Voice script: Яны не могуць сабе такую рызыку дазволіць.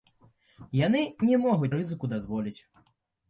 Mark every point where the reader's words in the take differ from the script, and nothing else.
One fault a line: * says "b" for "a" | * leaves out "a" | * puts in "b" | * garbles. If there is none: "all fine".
* leaves out "сабе такую"